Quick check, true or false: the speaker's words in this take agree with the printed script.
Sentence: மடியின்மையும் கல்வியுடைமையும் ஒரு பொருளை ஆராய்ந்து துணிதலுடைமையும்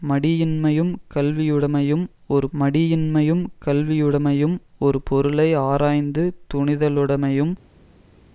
false